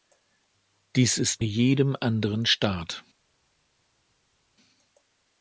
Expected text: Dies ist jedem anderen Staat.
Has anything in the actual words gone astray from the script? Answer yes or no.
no